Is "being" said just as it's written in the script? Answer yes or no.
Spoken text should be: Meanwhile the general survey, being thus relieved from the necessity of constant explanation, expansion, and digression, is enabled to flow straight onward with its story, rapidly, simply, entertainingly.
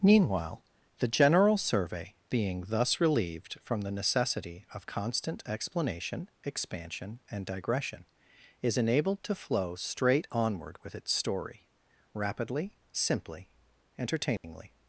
yes